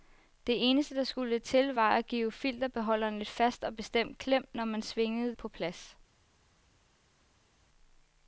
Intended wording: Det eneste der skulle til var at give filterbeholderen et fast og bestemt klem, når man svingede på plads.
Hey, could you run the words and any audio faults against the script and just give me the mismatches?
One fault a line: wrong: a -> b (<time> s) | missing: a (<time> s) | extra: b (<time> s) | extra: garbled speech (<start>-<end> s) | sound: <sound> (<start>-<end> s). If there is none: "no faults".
no faults